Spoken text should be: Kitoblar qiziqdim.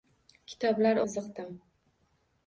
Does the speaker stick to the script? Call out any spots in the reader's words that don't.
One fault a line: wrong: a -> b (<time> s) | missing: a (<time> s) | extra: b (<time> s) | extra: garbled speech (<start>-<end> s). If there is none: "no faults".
no faults